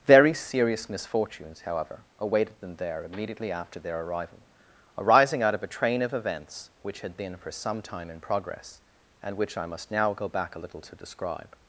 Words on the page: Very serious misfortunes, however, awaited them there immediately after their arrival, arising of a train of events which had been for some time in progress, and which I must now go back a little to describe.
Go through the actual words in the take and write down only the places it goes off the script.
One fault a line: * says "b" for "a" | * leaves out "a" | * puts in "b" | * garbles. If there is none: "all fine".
* puts in "out"